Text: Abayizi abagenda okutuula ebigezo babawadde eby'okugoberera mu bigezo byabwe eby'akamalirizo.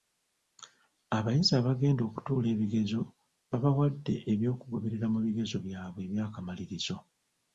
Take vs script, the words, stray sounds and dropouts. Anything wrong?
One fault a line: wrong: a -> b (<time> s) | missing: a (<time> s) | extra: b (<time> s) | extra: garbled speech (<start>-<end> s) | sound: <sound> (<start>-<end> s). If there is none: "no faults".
no faults